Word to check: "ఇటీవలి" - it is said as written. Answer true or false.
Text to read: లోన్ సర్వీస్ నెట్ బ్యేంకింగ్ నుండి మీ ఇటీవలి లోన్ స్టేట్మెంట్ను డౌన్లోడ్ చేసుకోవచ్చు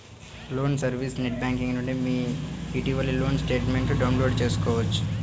true